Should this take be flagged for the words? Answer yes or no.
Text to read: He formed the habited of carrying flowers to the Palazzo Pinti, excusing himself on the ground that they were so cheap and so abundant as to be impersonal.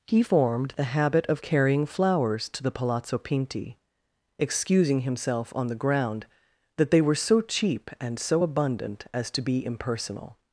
yes